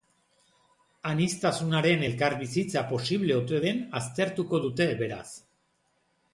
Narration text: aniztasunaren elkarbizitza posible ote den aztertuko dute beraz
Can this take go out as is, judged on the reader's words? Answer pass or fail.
pass